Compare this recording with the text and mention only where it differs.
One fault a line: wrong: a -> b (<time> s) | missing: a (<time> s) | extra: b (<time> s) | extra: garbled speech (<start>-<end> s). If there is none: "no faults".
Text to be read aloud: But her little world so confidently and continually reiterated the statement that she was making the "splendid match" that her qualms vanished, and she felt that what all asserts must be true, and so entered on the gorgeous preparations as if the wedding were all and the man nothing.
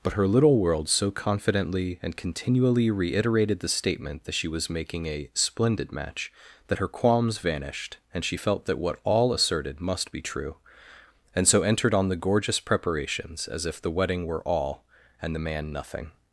wrong: the -> a (5.0 s)
wrong: asserts -> asserted (9.3 s)